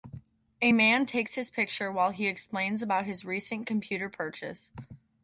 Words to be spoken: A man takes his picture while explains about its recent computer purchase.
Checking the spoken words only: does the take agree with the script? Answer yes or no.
no